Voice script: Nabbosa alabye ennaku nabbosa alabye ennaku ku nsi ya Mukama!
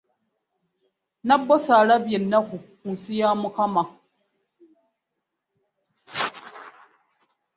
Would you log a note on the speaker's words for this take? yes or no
yes